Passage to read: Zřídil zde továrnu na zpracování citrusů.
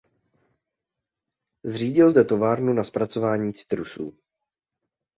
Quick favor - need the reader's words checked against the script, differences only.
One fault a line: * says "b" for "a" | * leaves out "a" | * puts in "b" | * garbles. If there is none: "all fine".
all fine